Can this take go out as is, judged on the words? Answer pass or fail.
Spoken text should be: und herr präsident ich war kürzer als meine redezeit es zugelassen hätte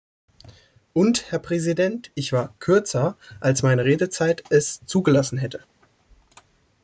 pass